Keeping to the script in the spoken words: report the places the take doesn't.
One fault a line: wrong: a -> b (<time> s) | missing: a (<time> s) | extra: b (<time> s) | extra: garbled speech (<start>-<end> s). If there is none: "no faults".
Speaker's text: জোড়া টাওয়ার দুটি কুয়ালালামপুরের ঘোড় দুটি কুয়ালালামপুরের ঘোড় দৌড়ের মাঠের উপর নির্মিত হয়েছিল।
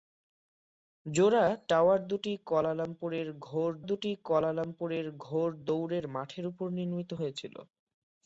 no faults